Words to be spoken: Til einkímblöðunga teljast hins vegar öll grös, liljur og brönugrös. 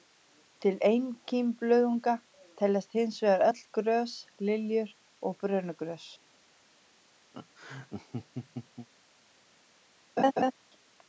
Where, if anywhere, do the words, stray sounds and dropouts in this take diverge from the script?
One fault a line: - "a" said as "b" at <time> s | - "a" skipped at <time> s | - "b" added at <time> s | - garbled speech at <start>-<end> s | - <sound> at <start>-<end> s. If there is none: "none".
- laugh at 7.3-8.9 s
- laugh at 10.2-10.5 s